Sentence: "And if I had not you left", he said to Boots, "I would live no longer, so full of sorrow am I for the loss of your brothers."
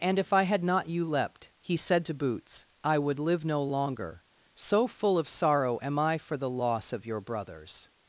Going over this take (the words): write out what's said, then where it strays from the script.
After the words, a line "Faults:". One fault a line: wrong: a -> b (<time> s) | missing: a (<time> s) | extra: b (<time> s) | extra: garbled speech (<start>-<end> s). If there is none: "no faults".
"And if I had not you leapt", he said to Boots, "I would live no longer, so full of sorrow am I for the loss of your brothers."
Faults:
wrong: left -> leapt (1.1 s)